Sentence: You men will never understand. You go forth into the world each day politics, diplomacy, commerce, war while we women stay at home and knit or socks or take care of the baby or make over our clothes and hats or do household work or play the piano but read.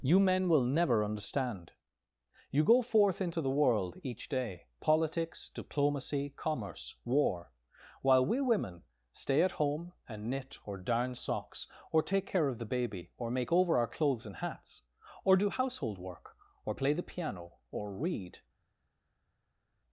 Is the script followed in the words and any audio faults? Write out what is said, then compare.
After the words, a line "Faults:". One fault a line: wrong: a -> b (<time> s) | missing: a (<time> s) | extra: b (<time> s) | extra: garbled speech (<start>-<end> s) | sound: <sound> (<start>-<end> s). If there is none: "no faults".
You men will never understand. You go forth into the world each day politics, diplomacy, commerce, war while we women stay at home and knit or darn socks or take care of the baby or make over our clothes and hats or do household work or play the piano or read.
Faults:
extra: darn (10.8 s)
wrong: but -> or (17.7 s)